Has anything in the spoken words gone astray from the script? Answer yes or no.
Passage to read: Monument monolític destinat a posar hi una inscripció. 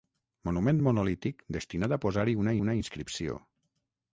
yes